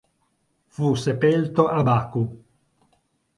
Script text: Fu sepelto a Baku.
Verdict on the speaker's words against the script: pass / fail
pass